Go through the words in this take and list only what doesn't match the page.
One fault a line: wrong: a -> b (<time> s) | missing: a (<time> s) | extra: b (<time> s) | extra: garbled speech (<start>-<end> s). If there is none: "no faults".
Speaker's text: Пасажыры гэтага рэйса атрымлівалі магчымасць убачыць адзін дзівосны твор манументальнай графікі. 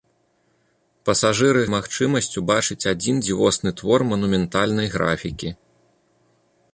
missing: гэтага рэйса атрымлівалі (1.6 s)